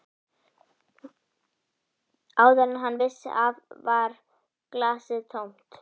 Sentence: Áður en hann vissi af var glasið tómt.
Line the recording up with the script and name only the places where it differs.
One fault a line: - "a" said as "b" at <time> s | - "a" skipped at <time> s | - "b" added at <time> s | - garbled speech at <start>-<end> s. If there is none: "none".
none